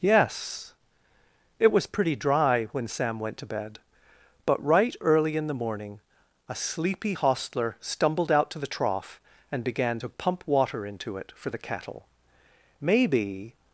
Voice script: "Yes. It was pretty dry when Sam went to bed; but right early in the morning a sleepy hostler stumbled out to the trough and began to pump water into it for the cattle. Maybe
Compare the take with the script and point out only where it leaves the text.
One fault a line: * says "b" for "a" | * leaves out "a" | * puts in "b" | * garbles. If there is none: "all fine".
all fine